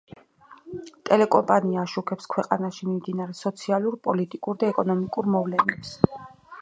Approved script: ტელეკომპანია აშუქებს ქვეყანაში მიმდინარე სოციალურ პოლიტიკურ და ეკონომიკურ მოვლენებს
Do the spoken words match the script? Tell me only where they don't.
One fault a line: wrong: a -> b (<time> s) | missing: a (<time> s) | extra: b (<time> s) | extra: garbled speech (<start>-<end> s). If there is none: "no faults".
no faults